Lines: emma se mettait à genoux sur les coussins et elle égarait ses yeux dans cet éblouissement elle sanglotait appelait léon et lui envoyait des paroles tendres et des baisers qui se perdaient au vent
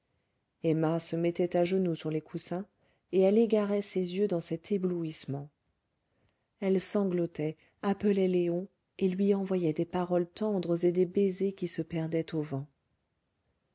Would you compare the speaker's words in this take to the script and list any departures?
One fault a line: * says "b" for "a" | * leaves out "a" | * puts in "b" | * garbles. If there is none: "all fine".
all fine